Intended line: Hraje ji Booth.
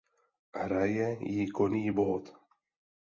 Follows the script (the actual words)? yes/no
no